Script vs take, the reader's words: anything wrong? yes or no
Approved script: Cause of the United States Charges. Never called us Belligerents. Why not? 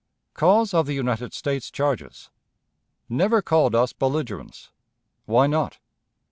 no